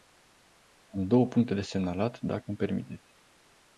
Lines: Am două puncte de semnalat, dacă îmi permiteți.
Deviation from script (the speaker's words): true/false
false